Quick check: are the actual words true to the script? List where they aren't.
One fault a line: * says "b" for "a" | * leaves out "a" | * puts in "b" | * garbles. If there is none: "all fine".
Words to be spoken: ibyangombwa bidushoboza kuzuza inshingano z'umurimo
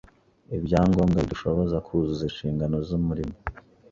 all fine